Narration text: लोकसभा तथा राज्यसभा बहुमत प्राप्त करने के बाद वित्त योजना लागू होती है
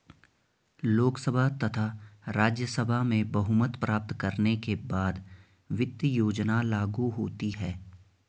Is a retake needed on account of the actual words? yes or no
yes